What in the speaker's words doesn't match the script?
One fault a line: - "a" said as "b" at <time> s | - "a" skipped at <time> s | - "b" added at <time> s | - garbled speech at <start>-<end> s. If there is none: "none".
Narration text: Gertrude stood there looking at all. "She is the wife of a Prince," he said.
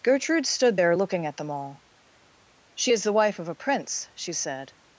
- "them" added at 1.4 s
- "he" said as "she" at 4.1 s